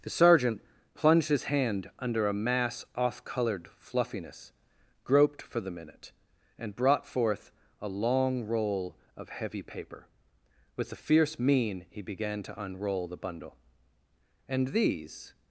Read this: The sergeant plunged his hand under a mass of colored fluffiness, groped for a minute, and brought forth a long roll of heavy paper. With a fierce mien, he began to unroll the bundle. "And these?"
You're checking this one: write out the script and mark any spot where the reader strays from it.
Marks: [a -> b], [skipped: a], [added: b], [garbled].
The sergeant plunged his hand under a mass [of -> off] colored fluffiness, groped for [a -> the] minute, and brought forth a long roll of heavy paper. With a fierce mien, he began to unroll the bundle. "And these?"